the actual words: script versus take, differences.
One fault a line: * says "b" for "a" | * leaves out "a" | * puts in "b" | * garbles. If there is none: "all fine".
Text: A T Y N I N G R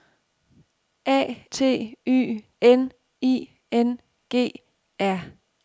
all fine